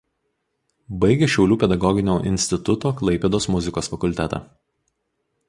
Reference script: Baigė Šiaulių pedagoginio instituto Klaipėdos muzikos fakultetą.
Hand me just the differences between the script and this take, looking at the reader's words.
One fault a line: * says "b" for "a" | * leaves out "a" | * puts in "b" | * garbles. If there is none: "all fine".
all fine